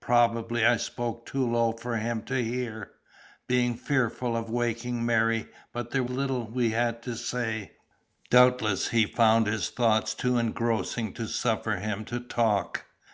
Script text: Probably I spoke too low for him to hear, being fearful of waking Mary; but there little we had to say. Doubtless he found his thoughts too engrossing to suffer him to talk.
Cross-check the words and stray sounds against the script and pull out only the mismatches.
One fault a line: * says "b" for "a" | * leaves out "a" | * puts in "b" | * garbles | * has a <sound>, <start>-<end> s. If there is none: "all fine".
all fine